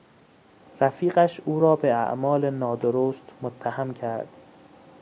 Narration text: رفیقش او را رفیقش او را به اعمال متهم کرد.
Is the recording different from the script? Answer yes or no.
yes